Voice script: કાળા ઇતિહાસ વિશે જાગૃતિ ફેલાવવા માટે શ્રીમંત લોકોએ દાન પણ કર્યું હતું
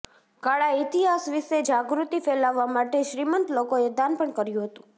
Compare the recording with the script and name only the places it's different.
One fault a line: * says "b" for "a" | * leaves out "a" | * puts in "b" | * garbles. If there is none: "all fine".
all fine